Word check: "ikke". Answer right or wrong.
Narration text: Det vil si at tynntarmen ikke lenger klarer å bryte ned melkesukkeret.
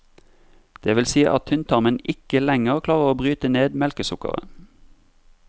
right